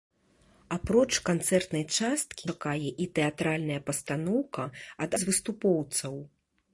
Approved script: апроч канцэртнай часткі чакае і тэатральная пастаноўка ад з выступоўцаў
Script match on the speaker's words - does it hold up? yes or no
yes